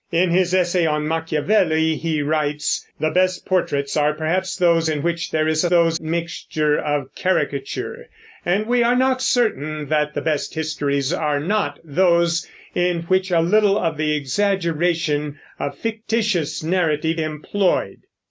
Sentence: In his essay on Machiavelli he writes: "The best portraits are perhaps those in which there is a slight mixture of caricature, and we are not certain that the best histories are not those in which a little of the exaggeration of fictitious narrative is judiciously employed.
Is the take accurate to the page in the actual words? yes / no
no